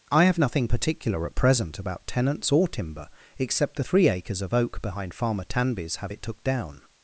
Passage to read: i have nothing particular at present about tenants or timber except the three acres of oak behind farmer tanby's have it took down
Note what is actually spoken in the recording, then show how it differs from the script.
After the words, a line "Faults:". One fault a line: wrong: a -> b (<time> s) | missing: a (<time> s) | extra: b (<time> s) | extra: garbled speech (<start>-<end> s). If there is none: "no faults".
i have nothing particular at present about tenants or timber except the three acres of oak behind farmer tanby's have it took down
Faults:
no faults